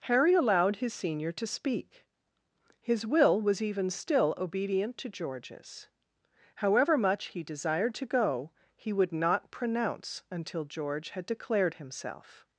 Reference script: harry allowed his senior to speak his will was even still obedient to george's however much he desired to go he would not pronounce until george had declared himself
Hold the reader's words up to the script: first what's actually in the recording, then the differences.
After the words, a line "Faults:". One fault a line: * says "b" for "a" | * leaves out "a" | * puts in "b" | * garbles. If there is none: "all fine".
harry allowed his senior to speak his will was even still obedient to george's however much he desired to go he would not pronounce until george had declared himself
Faults:
all fine